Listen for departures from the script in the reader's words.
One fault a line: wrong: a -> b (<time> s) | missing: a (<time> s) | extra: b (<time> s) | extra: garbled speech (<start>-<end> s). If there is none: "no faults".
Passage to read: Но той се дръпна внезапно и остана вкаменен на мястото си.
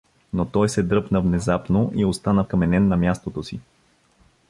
no faults